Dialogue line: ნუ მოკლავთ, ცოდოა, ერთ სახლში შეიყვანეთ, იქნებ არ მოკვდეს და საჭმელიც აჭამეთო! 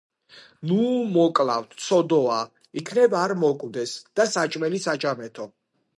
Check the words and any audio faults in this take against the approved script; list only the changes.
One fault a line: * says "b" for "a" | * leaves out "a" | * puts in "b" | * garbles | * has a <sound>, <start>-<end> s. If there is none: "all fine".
* leaves out "ერთ სახლში შეიყვანეთ"